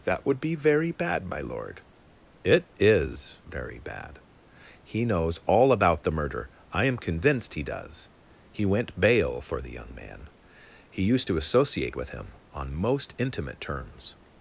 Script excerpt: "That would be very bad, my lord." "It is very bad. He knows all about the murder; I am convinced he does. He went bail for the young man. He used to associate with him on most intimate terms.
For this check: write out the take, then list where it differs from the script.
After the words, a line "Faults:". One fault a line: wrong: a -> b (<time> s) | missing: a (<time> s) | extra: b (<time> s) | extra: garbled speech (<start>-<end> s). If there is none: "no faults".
"That would be very bad, my lord." "It is very bad. He knows all about the murder; I am convinced he does. He went bail for the young man. He used to associate with him on most intimate terms.
Faults:
no faults